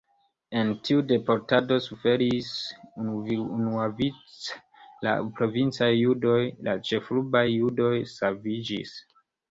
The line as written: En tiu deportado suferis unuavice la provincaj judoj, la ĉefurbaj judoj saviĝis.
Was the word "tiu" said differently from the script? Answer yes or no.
no